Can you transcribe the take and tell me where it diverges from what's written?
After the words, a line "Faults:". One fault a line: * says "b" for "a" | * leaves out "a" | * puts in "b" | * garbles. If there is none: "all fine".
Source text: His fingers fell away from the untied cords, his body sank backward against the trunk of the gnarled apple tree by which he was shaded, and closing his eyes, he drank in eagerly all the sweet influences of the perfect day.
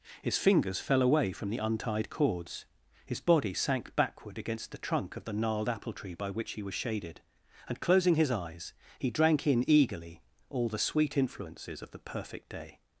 His fingers fell away from the untied cords, his body sank backward against the trunk of the gnarled apple tree by which he was shaded, and closing his eyes, he drank in eagerly all the sweet influences of the perfect day.
Faults:
all fine